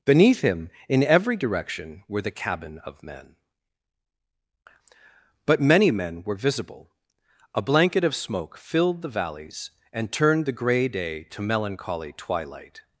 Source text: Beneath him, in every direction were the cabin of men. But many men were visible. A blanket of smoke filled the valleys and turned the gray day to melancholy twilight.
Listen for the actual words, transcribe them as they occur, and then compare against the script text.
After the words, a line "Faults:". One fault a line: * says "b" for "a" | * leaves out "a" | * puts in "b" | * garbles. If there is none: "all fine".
Beneath him, in every direction were the cabin of men. But many men were visible. A blanket of smoke filled the valleys and turned the gray day to melancholy twilight.
Faults:
all fine